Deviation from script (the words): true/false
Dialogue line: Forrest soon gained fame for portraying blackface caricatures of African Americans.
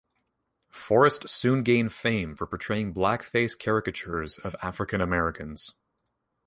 false